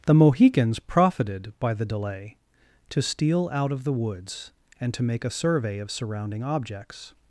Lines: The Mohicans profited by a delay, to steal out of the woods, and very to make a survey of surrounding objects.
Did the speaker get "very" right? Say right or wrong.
wrong